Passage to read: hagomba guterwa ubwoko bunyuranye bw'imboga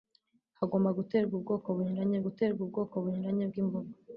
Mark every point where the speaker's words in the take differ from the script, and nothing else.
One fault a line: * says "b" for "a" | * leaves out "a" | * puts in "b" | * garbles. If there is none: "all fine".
* puts in "guterwa ubwoko bunyuranye"